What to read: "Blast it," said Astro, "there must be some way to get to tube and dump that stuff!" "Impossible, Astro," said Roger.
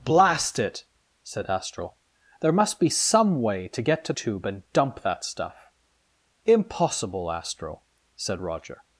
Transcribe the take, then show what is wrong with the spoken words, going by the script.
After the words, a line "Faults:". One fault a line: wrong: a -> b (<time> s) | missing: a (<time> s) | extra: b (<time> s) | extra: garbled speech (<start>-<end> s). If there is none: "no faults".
"Blast it," said Astro, "there must be some way to get to tube and dump that stuff!" "Impossible, Astro," said Roger.
Faults:
no faults